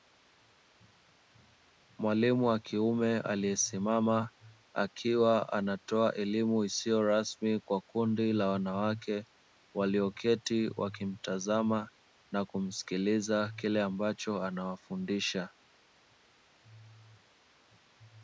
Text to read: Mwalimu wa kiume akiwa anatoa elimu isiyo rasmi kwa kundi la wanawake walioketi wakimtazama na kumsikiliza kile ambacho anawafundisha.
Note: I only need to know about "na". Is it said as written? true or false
true